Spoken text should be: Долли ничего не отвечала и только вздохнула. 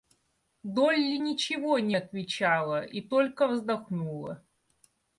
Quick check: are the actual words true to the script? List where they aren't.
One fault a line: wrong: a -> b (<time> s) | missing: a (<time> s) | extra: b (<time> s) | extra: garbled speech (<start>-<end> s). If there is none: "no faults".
no faults